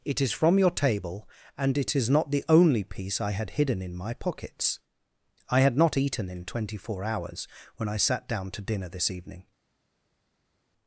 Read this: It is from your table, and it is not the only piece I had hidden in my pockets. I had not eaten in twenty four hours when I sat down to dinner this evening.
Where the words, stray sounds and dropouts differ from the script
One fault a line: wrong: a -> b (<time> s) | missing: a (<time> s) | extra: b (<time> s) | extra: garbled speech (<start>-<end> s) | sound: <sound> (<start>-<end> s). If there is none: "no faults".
no faults